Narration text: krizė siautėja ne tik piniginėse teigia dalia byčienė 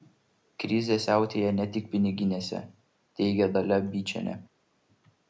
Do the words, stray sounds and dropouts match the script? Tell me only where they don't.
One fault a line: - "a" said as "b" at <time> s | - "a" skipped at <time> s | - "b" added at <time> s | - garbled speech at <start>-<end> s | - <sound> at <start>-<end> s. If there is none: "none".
none